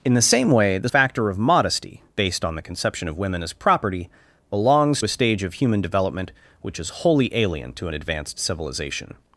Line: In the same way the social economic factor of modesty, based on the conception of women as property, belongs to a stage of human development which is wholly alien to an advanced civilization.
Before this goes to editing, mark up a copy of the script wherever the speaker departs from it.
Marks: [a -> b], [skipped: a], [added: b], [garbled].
In the same way the [skipped: social economic] factor of modesty, based on the conception of women as property, belongs [skipped: to] a stage of human development which is wholly alien to an advanced civilization.